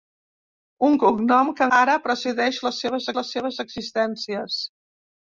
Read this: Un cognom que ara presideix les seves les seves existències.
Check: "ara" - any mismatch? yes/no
no